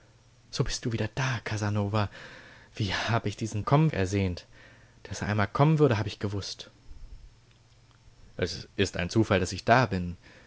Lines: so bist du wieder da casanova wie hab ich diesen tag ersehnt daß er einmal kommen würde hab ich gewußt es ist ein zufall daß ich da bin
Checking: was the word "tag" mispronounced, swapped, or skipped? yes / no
yes